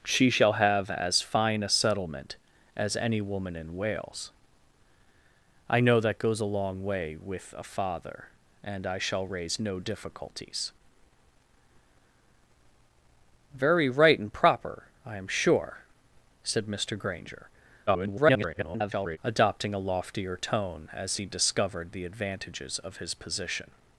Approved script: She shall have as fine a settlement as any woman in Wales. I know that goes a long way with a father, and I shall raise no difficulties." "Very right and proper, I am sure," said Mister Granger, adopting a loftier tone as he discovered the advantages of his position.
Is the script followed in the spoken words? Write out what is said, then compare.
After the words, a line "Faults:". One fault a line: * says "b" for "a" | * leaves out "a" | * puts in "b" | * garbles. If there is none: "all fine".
She shall have as fine a settlement as any woman in Wales. I know that goes a long way with a father, and I shall raise no difficulties." "Very right and proper, I am sure," said Mister Granger, [garbled] adopting a loftier tone as he discovered the advantages of his position.
Faults:
* garbles